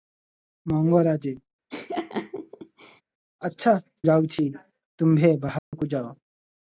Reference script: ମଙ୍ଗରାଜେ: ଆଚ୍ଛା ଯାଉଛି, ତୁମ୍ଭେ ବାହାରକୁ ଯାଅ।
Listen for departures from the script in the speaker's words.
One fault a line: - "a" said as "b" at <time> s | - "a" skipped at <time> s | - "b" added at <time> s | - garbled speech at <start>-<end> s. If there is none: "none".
none